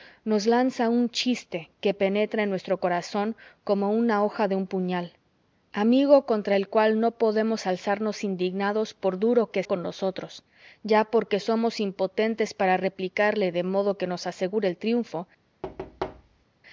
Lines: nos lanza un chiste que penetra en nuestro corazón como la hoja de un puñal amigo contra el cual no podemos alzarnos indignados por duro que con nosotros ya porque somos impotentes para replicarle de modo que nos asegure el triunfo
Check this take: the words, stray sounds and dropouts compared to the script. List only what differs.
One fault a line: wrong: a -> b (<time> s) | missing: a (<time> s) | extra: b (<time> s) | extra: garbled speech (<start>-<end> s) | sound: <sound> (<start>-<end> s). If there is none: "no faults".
sound: thud (15.6-16.5 s)